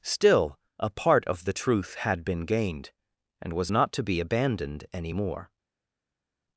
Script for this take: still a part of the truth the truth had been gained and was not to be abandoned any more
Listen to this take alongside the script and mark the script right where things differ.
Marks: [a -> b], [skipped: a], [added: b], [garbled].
still a part of the truth [skipped: the truth] had been gained and was not to be abandoned any more